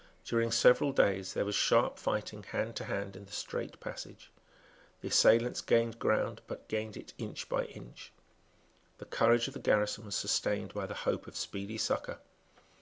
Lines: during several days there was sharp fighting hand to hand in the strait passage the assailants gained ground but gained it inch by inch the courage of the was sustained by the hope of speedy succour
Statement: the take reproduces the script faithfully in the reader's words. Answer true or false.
false